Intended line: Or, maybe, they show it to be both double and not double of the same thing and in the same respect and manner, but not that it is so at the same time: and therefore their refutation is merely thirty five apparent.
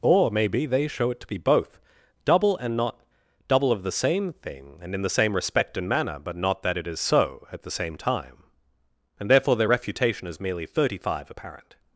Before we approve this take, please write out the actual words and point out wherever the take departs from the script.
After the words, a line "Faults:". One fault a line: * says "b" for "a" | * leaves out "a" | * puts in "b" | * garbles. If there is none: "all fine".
Or, maybe, they show it to be both double and not double of the same thing and in the same respect and manner, but not that it is so at the same time: and therefore their refutation is merely thirty five apparent.
Faults:
all fine